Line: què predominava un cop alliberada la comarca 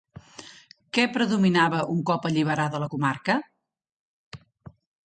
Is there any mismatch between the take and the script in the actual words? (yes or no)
no